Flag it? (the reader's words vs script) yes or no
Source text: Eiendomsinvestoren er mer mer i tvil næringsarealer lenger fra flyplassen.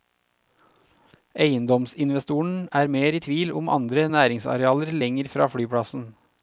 yes